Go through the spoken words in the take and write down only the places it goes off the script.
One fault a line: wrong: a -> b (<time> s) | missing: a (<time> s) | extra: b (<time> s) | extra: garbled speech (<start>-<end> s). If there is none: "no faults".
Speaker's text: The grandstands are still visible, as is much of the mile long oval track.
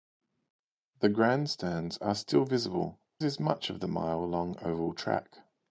missing: as (3.0 s)